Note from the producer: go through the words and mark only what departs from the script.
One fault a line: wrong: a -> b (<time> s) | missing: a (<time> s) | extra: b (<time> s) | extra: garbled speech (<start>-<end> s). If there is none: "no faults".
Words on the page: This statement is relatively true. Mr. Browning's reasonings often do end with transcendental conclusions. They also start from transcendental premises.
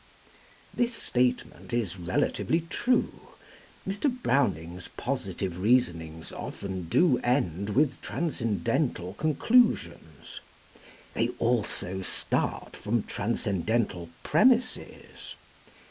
extra: positive (4.9 s)